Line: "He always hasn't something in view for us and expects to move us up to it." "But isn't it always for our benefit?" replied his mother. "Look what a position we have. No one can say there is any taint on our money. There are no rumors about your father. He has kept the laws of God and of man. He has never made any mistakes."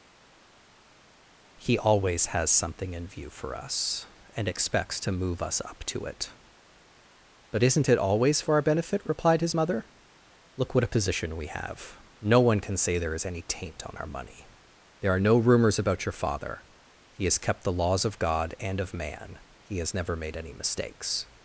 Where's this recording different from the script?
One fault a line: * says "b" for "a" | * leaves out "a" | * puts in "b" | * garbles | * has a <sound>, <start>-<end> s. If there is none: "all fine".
* says "has" for "hasn't"